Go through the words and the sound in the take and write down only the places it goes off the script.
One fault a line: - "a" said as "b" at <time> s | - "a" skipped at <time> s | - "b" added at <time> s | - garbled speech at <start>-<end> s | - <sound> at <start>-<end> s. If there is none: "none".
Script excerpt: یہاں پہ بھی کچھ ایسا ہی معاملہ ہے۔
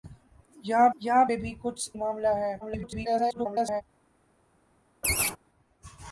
- "یہاں" added at 1.0 s
- "ایسا ہی" skipped at 1.9 s
- garbled speech at 2.6-3.8 s
- laugh at 5.0-5.4 s